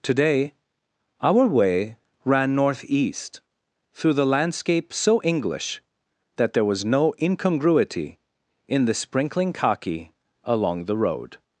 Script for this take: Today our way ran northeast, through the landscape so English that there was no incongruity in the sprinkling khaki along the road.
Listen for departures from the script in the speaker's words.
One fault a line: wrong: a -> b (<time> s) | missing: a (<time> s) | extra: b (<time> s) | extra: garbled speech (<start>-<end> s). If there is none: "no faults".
no faults